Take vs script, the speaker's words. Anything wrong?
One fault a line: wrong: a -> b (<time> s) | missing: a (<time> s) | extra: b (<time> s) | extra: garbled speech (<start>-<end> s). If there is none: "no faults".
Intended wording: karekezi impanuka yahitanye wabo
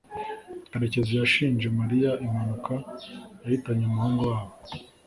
extra: yashinje mariya (1.2 s)
extra: umuhungu (3.9 s)